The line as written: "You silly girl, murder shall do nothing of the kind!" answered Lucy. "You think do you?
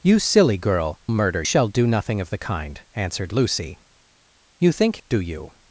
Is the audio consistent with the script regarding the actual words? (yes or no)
yes